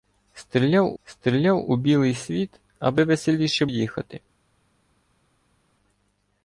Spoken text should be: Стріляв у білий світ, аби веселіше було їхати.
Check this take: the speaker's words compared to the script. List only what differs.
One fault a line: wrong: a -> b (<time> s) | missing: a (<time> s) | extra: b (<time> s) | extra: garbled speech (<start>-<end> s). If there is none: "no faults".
extra: стріляв (1.0 s)
missing: було (3.7 s)